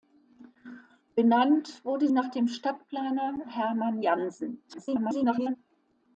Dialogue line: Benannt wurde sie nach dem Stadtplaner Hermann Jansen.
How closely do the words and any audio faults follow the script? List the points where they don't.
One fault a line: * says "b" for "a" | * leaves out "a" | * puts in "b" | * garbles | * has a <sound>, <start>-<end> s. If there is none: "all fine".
* leaves out "sie"
* garbles